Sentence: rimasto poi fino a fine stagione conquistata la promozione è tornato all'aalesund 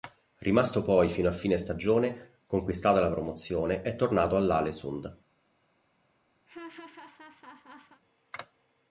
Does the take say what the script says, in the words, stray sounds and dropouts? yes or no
no